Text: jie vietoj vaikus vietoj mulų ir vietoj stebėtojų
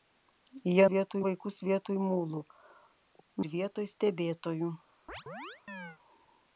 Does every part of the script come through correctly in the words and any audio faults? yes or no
no